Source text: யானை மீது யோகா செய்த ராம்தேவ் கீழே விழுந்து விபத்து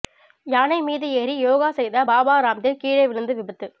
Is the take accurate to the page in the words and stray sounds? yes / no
no